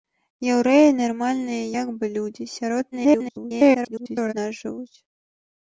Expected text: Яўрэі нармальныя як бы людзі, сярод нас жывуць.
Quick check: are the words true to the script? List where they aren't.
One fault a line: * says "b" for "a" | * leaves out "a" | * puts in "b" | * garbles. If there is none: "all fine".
* garbles